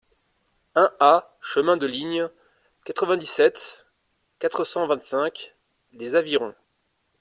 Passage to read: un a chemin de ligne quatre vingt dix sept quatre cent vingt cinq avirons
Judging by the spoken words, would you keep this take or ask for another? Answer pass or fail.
fail